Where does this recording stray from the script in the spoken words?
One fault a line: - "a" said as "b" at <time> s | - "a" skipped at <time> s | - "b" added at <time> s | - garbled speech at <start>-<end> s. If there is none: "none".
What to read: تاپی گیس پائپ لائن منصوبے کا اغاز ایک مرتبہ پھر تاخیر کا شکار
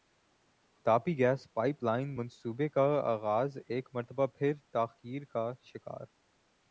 none